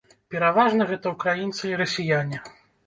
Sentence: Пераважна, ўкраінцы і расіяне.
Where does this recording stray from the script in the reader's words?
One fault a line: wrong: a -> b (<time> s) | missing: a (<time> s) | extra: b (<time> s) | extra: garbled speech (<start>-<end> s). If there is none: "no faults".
extra: гэта (0.9 s)